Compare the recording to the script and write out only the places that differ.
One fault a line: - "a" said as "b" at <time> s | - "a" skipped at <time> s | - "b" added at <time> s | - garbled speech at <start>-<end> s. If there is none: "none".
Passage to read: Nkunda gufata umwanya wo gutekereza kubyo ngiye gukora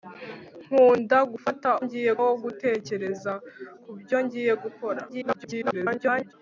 - "umwanya" said as "ngiye" at 1.8 s
- garbled speech at 5.1-6.3 s